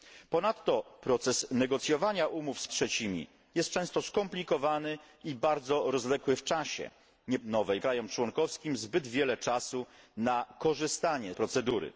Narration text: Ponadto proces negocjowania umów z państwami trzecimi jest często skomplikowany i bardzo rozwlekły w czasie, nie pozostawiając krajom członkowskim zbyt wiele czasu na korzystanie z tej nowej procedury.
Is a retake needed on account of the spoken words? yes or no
yes